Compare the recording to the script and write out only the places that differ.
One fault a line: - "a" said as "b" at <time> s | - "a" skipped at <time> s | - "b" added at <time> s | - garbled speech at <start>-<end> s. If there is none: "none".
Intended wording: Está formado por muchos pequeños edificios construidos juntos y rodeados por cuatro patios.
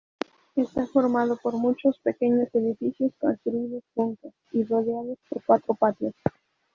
none